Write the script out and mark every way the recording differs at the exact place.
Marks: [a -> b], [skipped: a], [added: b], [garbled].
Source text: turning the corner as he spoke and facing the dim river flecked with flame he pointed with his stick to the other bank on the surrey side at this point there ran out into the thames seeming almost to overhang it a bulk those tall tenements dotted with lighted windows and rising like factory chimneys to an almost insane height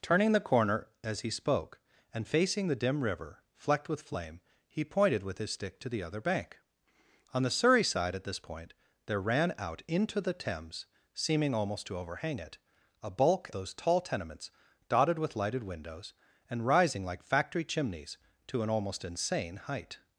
turning the corner as he spoke and facing the dim river flecked with flame he pointed with his stick to the other bank on the surrey side at this point there ran out into the thames seeming almost to overhang it a bulk those tall tenements dotted with lighted windows and rising like factory chimneys to an almost insane height